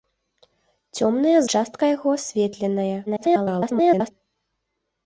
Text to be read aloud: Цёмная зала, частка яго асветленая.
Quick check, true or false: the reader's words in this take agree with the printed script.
false